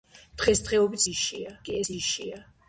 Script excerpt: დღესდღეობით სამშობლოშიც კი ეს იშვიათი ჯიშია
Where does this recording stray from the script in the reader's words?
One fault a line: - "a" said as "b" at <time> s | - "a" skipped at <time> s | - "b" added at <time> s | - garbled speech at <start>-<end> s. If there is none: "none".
- "სამშობლოშიც" said as "ჯიშია" at 1.1 s
- "იშვიათი" skipped at 1.9 s